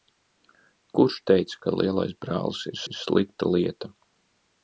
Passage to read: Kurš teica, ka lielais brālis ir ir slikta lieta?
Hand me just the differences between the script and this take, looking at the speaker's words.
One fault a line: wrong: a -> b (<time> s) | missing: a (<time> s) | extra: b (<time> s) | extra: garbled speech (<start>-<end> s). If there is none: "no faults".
no faults